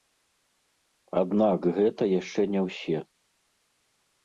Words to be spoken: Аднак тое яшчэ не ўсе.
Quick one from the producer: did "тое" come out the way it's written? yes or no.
no